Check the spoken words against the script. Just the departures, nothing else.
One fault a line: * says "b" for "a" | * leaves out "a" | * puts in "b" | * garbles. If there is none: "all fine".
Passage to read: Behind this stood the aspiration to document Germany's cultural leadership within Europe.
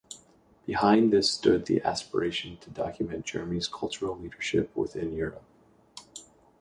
all fine